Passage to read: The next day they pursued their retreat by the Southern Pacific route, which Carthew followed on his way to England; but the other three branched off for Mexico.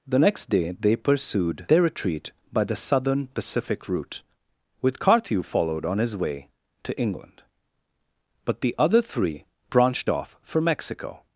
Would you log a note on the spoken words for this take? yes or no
yes